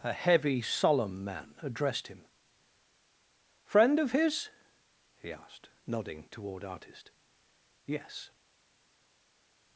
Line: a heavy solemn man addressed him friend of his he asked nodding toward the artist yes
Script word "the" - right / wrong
wrong